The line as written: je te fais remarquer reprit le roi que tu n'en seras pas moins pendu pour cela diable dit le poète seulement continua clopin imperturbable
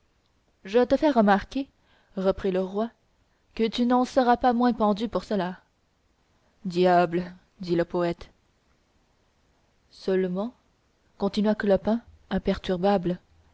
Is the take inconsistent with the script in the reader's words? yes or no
no